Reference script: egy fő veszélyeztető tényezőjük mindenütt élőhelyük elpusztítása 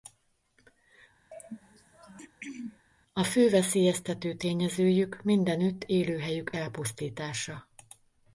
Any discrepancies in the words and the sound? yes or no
yes